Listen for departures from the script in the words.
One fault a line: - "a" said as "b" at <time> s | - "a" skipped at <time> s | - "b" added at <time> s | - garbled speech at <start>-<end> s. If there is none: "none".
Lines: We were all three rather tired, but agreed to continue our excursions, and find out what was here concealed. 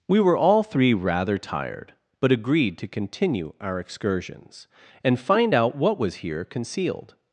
none